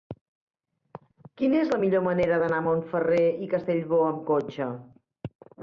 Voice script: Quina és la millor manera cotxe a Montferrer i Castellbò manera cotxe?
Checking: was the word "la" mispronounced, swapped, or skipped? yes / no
no